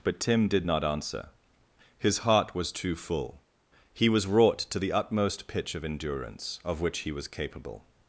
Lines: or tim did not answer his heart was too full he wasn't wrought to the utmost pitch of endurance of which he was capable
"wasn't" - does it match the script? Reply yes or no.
no